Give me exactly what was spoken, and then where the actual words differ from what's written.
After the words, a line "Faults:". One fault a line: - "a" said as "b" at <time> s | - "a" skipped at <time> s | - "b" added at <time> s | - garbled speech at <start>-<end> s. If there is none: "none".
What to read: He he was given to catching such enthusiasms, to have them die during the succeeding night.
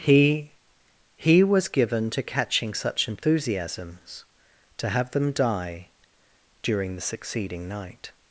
He he was given to catching such enthusiasms, to have them die during the succeeding night.
Faults:
none